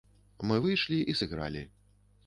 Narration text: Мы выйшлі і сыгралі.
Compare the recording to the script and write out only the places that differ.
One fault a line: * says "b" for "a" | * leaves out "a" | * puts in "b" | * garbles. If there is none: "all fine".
all fine